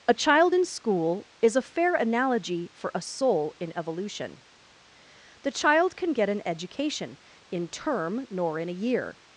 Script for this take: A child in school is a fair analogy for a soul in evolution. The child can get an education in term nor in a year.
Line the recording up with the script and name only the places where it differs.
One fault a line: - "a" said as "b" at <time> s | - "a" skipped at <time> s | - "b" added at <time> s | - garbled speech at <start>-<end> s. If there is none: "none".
none